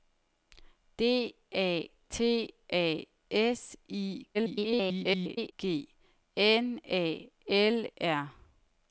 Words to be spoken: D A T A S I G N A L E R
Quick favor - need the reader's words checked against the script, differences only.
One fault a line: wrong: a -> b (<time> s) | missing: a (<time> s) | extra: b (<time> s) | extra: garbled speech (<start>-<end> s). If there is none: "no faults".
extra: garbled speech (4.3-5.5 s)
missing: E (7.9 s)